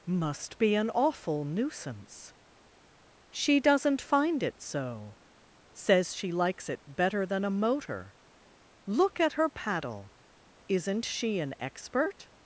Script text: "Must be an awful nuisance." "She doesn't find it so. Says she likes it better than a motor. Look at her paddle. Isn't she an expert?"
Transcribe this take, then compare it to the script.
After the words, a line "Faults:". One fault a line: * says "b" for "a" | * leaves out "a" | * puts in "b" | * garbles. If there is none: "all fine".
"Must be an awful nuisance." "She doesn't find it so. Says she likes it better than a motor. Look at her paddle. Isn't she an expert?"
Faults:
all fine